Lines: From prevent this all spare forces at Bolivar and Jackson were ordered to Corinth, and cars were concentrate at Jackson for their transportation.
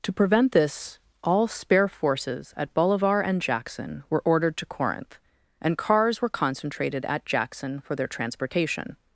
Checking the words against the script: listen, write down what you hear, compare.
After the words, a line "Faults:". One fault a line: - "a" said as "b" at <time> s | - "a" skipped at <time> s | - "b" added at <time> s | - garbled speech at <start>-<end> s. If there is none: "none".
To prevent this all spare forces at Bolivar and Jackson were ordered to Corinth, and cars were concentrated at Jackson for their transportation.
Faults:
- "From" said as "To" at 0.0 s
- "concentrate" said as "concentrated" at 6.3 s